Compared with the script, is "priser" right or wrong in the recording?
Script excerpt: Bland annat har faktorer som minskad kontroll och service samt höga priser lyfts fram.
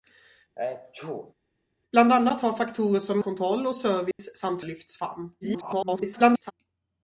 wrong